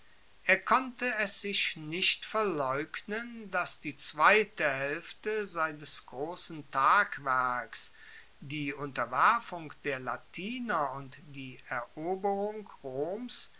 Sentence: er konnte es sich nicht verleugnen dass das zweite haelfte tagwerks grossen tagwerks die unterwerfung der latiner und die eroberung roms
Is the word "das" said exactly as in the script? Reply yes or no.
no